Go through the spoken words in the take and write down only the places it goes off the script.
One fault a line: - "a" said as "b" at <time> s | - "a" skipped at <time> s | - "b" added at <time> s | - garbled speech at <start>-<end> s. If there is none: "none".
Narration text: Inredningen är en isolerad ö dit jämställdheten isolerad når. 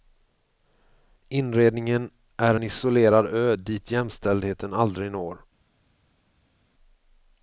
- "isolerad" said as "aldrig" at 4.7 s